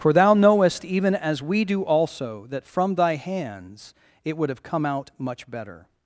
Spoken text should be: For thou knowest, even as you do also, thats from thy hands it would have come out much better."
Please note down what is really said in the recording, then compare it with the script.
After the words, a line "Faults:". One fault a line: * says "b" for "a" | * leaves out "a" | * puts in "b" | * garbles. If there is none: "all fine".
For thou knowest, even as we do also, that from thy hands it would have come out much better."
Faults:
* says "we" for "you"
* says "that" for "thats"